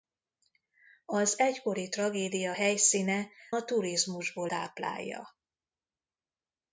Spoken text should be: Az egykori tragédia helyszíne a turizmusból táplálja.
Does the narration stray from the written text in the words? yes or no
no